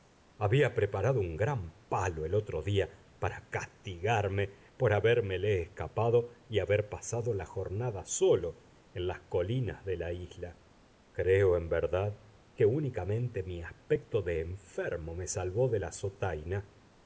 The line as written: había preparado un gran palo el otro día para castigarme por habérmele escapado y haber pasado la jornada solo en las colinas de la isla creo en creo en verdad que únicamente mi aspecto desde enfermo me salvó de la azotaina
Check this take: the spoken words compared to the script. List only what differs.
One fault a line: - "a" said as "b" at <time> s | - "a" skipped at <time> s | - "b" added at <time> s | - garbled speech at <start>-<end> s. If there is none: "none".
- "creo en" skipped at 11.7 s
- "desde" said as "de" at 14.2 s